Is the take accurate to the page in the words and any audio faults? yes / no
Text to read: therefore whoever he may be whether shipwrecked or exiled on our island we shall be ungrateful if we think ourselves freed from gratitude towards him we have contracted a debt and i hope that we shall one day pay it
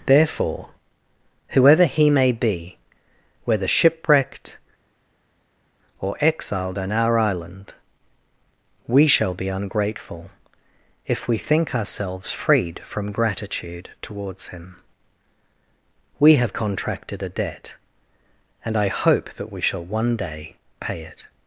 yes